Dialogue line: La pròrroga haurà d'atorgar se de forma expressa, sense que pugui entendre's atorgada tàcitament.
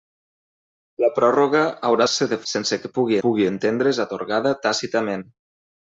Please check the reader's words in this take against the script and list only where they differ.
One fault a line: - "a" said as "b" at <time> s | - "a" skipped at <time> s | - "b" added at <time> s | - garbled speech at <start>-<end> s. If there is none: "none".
- "d'atorgar" skipped at 2.1 s
- "forma expressa" skipped at 2.4 s
- "pugui" added at 3.3 s